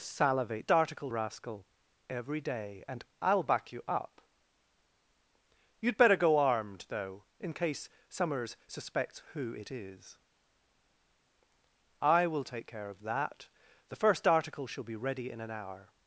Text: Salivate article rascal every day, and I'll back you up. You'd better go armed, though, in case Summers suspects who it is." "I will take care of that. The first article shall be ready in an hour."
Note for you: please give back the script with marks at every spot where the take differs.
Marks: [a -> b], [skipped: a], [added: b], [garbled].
Salivate article rascal every day, and I'll back you up. You'd better go armed, though, in case Summers suspects who it is." "I will take care of that. The first article shall be ready in an hour."